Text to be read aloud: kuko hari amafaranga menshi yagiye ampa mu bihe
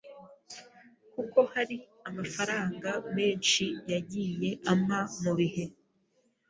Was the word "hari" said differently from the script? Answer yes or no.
no